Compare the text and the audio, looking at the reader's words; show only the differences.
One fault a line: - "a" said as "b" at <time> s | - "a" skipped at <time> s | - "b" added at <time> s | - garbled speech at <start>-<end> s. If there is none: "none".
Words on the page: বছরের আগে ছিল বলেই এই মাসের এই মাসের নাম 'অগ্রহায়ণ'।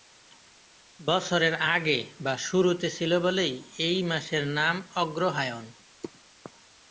- "বা শুরুতে" added at 2.2 s
- "এই মাসের" skipped at 4.4 s